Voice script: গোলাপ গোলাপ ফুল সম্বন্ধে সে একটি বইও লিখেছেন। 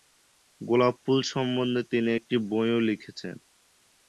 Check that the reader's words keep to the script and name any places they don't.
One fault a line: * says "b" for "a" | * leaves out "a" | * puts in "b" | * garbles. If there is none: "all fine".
* leaves out "গোলাপ"
* says "তিনি" for "সে"